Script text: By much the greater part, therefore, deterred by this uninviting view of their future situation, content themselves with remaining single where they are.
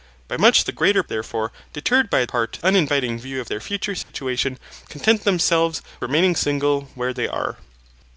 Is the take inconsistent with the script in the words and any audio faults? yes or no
yes